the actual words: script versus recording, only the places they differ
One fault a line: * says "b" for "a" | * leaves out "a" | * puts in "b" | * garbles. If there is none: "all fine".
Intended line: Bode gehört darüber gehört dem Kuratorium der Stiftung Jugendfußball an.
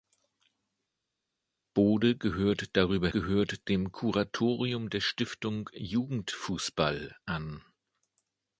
all fine